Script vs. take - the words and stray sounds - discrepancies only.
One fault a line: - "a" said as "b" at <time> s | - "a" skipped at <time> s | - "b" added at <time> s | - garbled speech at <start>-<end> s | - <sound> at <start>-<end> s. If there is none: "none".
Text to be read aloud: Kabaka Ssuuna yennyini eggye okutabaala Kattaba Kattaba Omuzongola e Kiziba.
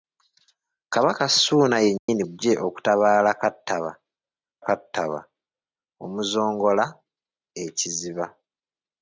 - dropout at 2.0-2.1 s